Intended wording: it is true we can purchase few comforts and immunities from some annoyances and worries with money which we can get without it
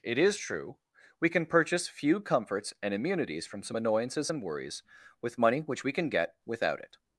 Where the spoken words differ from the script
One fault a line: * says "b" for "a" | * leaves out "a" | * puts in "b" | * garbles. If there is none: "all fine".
all fine